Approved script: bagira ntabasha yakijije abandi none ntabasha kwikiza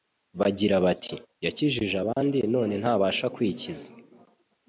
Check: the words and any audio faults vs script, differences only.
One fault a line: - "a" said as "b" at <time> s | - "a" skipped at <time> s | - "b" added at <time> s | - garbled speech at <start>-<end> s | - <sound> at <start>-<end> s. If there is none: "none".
- "ntabasha" said as "bati" at 0.8 s
- dropout at 2.1-2.2 s